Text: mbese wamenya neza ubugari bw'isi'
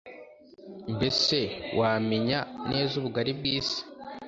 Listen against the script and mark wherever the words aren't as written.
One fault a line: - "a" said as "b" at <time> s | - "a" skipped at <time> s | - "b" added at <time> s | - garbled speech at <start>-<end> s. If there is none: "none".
none